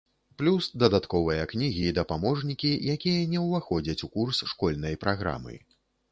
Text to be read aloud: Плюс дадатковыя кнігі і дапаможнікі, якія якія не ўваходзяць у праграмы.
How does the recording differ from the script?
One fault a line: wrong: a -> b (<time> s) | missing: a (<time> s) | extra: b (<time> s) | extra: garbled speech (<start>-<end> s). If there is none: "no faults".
missing: якія (3.3 s)
extra: курс школьнай (4.2 s)